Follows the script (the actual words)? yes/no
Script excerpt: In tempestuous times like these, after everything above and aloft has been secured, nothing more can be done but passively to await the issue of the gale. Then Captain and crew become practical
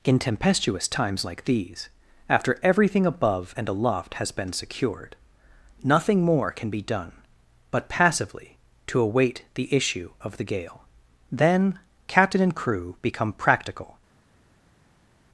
yes